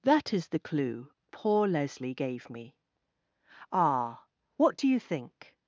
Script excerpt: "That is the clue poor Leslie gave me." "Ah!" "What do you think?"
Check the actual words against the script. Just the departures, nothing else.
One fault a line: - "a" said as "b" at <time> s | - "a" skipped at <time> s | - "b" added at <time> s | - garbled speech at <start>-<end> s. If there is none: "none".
none